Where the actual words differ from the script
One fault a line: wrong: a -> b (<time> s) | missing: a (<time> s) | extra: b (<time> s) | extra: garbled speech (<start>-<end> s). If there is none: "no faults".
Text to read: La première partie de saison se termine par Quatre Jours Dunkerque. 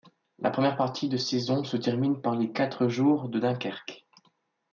extra: les (2.4 s)
extra: de (3.3 s)